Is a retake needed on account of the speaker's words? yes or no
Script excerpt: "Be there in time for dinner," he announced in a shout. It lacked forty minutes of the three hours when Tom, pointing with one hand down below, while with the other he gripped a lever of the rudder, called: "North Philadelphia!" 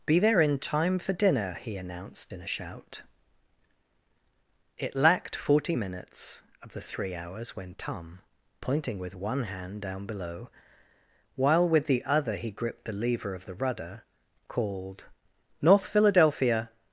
yes